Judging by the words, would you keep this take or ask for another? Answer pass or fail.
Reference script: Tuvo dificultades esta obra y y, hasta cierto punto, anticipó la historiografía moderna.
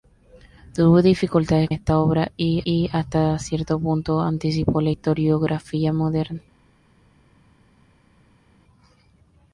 pass